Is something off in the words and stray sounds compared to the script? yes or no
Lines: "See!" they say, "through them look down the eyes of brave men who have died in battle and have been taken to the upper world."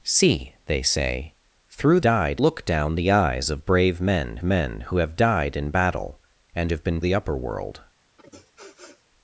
yes